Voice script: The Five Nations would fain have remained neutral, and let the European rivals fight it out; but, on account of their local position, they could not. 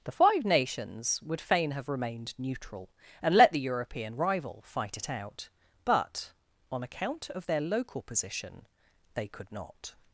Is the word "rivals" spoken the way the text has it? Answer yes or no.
no